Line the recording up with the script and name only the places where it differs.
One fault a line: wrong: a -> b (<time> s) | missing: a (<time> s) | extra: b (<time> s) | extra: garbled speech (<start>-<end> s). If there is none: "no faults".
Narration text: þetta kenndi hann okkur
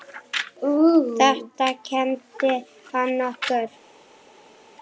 no faults